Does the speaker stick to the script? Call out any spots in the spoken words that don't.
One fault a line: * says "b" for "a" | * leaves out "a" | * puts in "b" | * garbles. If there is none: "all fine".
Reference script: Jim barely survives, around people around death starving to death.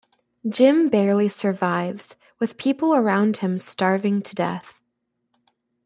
* says "with" for "around"
* says "him" for "death"